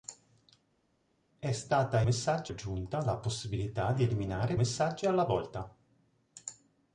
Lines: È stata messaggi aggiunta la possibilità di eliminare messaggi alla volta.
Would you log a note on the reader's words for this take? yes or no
no